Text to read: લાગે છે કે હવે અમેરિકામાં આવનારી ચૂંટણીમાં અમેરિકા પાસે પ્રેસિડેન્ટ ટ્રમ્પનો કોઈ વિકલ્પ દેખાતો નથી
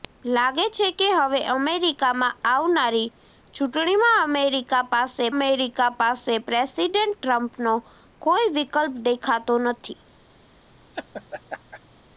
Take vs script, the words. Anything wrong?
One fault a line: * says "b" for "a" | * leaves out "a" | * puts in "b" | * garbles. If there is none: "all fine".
* puts in "અમેરિકા પાસે"